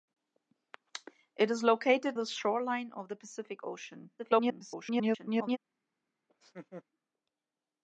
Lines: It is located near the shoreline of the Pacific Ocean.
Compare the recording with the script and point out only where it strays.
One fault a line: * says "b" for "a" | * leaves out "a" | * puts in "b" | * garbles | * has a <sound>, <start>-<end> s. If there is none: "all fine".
* leaves out "near"
* garbles
* has a laugh, 6.3-6.8 s